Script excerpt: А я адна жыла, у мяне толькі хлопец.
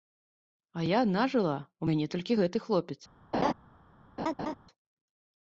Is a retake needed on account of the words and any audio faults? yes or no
yes